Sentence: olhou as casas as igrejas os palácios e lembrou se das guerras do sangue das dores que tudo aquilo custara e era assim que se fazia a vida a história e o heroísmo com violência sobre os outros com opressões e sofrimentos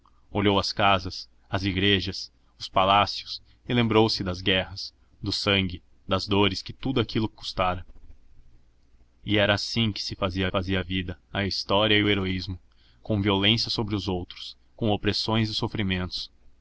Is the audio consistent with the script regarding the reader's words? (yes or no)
no